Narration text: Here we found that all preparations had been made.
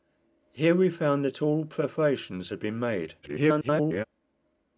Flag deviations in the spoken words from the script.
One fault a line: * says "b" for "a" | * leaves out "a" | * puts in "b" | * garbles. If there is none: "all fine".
* garbles